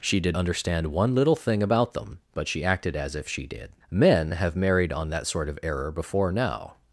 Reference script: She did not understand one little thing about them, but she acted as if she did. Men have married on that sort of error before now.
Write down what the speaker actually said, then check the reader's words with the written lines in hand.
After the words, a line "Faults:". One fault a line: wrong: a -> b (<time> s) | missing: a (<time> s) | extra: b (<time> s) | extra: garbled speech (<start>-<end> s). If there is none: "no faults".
She did understand one little thing about them, but she acted as if she did. Men have married on that sort of error before now.
Faults:
missing: not (0.3 s)